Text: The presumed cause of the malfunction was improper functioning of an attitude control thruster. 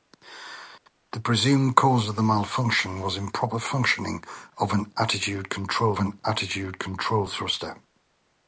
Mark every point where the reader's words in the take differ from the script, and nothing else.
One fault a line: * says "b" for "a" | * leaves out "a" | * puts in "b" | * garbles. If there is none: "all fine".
* puts in "an attitude control"